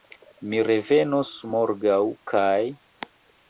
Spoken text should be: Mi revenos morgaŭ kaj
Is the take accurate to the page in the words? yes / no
yes